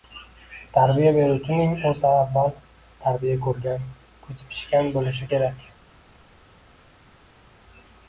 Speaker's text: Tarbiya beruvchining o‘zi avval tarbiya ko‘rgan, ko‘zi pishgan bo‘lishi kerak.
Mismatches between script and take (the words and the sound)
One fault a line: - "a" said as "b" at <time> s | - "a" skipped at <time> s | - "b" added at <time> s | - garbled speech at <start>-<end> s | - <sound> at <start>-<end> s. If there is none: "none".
none